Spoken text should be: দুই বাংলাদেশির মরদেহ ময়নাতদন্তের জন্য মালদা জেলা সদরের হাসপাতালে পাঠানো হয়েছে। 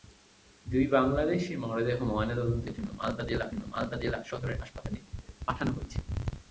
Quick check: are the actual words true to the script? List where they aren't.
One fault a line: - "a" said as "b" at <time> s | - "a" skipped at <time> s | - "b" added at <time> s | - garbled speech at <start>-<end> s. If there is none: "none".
- "জন্য মালদা জেলা" added at 3.5 s